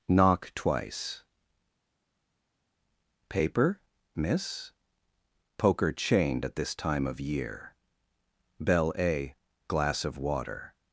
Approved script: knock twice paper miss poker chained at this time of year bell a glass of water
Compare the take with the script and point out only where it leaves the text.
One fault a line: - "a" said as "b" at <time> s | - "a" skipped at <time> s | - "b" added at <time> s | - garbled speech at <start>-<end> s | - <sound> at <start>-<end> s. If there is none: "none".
none